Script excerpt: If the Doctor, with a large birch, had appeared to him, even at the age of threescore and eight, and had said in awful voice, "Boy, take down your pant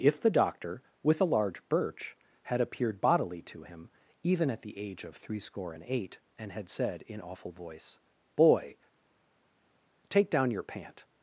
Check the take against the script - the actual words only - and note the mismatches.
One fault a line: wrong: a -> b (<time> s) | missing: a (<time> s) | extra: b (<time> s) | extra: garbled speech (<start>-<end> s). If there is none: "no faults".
extra: bodily (3.0 s)